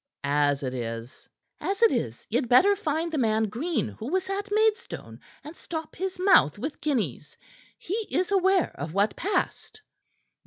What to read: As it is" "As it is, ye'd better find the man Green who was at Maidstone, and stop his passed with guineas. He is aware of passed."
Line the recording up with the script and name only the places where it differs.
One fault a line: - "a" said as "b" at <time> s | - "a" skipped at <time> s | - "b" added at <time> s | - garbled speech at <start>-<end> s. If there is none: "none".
- "passed" said as "mouth" at 6.2 s
- "what" added at 8.9 s